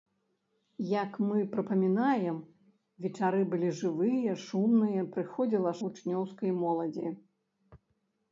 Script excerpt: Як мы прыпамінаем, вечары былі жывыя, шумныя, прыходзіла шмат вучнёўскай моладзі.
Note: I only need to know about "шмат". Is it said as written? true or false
false